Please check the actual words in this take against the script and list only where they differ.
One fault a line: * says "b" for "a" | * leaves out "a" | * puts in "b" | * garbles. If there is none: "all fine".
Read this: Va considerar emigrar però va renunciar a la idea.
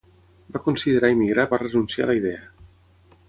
* leaves out "però"